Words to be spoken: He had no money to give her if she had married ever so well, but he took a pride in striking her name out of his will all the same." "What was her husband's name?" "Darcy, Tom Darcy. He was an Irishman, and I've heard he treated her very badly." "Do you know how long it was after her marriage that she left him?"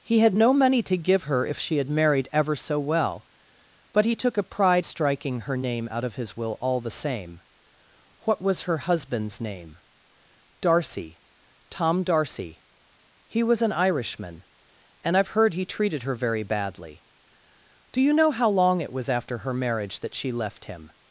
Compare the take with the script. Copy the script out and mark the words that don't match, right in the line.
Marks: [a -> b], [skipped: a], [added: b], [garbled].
He had no money to give her if she had married ever so well, but he took a pride [skipped: in] striking her name out of his will all the same." "What was her husband's name?" "Darcy, Tom Darcy. He was an Irishman, and I've heard he treated her very badly." "Do you know how long it was after her marriage that she left him?"